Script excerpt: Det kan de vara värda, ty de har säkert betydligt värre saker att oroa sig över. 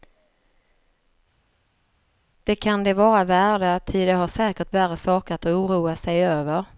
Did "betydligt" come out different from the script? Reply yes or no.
yes